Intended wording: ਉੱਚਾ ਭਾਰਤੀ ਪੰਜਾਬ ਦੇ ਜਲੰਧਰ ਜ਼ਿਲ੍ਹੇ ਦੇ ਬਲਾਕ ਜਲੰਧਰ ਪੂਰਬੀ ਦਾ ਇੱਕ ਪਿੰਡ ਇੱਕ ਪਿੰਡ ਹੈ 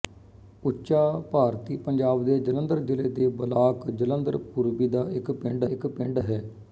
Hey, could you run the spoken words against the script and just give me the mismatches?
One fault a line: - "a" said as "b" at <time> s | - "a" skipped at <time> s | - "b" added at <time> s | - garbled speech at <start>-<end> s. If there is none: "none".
none